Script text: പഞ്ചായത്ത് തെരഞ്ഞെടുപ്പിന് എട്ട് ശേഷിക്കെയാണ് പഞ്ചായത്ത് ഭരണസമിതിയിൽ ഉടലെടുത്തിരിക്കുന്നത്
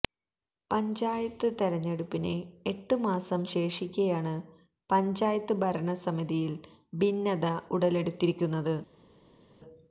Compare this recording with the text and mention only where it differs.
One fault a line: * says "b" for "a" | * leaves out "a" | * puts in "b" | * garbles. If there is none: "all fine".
* puts in "മാസം"
* puts in "ഭിന്നത"